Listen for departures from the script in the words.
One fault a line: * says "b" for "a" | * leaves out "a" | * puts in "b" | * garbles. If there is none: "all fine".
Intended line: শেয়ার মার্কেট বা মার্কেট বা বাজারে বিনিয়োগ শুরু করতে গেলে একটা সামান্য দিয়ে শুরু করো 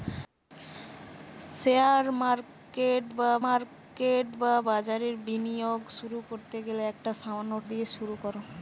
all fine